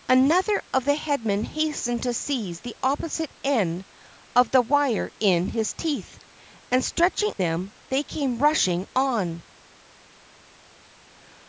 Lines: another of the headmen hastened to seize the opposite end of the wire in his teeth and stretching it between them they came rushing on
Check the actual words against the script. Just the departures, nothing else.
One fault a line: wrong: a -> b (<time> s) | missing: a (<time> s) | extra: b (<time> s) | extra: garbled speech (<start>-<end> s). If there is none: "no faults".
missing: it between (7.3 s)